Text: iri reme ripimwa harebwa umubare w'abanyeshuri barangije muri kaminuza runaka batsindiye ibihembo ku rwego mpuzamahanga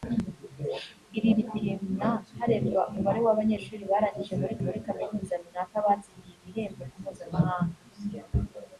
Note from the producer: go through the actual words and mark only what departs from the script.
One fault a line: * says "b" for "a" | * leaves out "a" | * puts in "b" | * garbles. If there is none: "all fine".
* leaves out "reme"
* puts in "muri"
* leaves out "rwego"